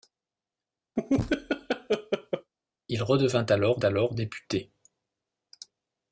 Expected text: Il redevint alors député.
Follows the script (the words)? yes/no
no